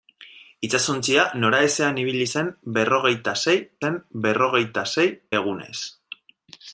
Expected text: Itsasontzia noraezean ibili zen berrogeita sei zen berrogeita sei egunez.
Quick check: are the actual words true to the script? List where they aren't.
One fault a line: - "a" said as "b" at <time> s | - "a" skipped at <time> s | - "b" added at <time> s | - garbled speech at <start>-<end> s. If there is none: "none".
none